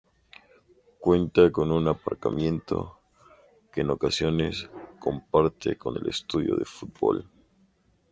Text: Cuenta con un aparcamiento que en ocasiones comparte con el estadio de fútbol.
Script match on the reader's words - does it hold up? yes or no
yes